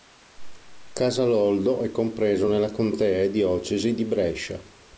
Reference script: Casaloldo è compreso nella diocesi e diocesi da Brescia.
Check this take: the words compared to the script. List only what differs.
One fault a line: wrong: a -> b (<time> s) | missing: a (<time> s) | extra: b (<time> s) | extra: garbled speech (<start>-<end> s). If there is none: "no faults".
wrong: diocesi -> contea (2.7 s)
wrong: da -> di (3.9 s)